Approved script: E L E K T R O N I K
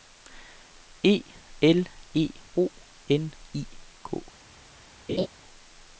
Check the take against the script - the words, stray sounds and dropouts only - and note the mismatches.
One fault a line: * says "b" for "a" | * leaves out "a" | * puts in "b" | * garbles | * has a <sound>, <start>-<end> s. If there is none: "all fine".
* leaves out "K T R"
* has a laugh, 5.1-5.3 s